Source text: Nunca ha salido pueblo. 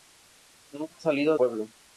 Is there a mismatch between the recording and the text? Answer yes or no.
no